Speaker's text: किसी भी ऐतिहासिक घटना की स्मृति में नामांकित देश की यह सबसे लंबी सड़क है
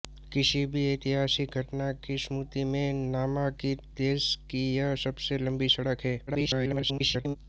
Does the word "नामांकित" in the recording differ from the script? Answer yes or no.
no